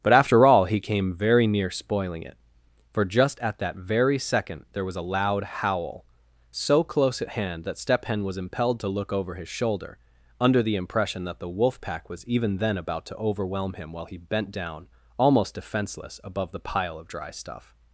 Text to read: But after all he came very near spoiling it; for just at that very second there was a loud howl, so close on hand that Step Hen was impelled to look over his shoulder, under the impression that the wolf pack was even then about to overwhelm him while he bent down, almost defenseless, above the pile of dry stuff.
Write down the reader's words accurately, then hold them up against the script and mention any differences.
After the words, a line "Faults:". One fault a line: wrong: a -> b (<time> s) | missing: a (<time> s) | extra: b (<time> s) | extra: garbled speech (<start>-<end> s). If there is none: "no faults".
But after all he came very near spoiling it; for just at that very second there was a loud howl, so close at hand that Step Hen was impelled to look over his shoulder, under the impression that the wolf pack was even then about to overwhelm him while he bent down, almost defenseless, above the pile of dry stuff.
Faults:
wrong: on -> at (7.2 s)